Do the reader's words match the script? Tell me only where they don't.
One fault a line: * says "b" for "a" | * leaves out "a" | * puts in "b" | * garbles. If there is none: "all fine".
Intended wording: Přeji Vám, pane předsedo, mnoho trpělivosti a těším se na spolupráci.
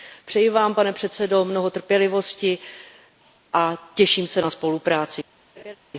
all fine